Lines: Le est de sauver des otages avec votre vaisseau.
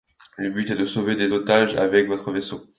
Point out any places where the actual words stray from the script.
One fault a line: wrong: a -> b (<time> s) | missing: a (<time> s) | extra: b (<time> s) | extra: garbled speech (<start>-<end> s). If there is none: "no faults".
extra: but (0.5 s)